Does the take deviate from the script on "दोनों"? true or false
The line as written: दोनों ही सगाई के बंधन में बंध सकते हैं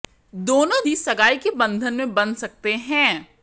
false